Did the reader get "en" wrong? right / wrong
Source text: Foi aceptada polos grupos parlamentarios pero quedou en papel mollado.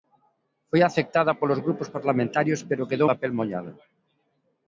wrong